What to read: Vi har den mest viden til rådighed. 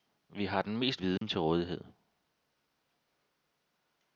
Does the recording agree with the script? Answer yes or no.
yes